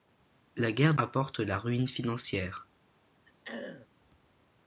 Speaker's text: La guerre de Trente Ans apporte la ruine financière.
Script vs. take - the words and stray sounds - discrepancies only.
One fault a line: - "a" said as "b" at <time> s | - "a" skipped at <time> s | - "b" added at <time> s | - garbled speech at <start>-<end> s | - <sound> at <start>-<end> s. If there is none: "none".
- "de Trente Ans" skipped at 0.9 s
- throat clearing at 3.2-3.9 s